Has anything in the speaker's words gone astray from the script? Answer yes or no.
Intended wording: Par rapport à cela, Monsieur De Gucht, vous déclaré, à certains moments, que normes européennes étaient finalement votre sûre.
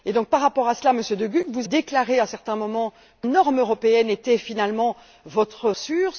no